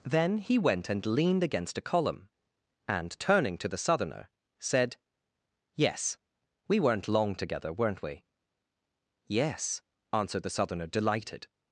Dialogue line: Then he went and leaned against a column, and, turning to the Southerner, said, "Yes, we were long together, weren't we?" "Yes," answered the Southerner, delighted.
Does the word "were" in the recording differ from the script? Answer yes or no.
yes